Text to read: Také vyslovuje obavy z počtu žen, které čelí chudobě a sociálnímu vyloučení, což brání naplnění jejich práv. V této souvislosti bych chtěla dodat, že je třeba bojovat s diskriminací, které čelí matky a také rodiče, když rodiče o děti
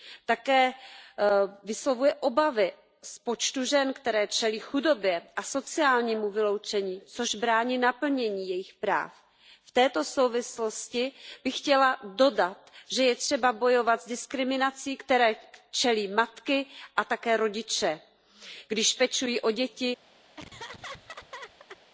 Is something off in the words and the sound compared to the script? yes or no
yes